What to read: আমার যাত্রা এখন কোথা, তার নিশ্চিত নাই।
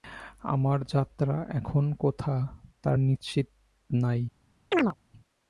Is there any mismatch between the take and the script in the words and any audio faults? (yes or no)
yes